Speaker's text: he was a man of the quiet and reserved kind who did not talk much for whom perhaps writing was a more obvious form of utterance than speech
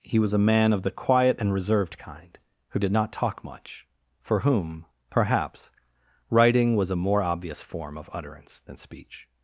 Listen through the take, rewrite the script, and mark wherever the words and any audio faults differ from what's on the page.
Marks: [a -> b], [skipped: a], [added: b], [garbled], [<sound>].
he was a man of the quiet and reserved kind who did not talk much for whom perhaps writing was a more obvious form of utterance than speech